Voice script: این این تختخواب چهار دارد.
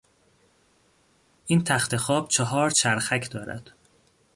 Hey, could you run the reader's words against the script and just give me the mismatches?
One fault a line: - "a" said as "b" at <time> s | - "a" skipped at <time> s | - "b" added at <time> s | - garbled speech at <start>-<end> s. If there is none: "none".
- "این" skipped at 1.6 s
- "چرخک" added at 2.7 s